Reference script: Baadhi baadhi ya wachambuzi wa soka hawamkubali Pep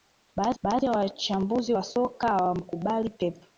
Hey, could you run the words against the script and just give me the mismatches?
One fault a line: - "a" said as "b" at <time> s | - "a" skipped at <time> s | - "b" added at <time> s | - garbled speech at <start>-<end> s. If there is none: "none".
none